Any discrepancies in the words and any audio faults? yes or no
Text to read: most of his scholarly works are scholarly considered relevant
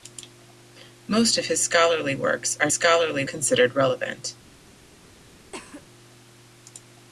yes